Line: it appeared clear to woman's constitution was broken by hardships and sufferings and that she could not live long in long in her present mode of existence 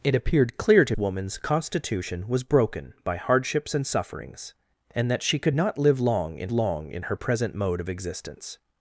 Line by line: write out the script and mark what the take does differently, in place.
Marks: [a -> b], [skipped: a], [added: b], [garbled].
it appeared clear to woman's constitution was broken by hardships and sufferings and that she could not live long in long in her present mode of existence